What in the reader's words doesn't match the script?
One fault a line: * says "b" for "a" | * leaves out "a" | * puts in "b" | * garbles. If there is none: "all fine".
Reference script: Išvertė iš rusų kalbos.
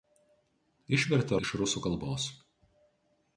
all fine